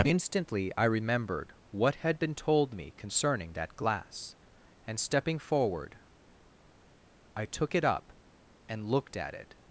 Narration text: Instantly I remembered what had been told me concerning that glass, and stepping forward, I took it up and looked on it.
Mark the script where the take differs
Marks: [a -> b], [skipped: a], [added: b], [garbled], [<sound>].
Instantly I remembered what had been told me concerning that glass, and stepping forward, I took it up and looked [on -> at] it.